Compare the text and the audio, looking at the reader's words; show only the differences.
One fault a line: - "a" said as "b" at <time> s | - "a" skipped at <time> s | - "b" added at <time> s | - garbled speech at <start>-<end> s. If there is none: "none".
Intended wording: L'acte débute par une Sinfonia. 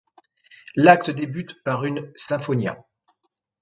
none